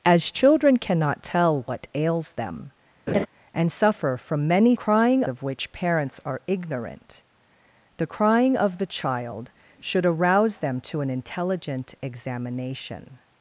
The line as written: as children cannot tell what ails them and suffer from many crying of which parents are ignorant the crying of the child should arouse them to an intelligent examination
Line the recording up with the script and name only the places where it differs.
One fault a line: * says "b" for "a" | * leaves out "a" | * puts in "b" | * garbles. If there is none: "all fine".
all fine